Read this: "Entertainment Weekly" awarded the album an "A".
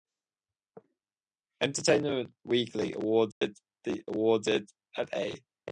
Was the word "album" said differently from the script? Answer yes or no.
yes